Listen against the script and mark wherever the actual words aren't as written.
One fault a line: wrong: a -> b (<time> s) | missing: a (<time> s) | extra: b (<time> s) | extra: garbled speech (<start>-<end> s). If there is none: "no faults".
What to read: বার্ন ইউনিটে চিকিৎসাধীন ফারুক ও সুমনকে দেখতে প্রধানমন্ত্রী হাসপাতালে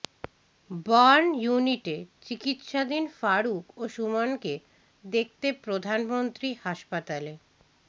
no faults